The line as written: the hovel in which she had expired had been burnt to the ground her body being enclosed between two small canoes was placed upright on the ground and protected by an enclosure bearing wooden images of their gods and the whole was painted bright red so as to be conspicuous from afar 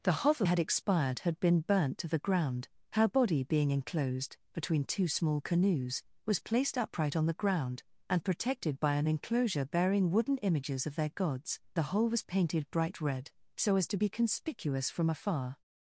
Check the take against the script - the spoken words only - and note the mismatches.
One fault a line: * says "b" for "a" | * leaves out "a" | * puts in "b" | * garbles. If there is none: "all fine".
* leaves out "in which she"
* leaves out "and"